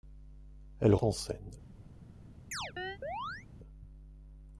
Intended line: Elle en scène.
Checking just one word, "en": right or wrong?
right